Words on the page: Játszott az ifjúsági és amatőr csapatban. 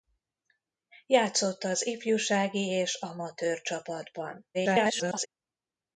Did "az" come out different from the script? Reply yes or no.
no